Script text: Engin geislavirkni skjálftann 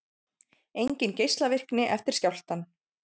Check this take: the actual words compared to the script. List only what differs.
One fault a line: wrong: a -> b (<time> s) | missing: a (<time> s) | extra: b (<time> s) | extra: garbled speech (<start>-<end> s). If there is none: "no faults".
extra: eftir (2.0 s)